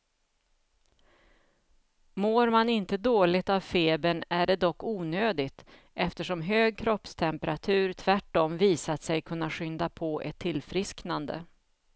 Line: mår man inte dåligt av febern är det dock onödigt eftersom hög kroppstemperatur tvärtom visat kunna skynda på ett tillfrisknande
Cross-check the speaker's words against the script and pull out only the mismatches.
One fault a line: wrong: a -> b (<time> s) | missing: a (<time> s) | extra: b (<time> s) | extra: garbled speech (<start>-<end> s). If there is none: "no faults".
extra: sig (9.0 s)